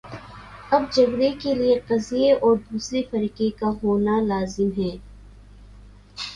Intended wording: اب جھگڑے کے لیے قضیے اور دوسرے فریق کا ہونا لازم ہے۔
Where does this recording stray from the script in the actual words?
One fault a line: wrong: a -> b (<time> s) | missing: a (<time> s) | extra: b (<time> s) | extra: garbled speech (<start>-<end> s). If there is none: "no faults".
no faults